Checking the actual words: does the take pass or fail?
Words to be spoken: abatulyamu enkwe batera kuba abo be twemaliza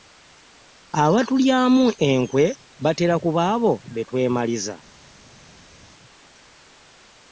pass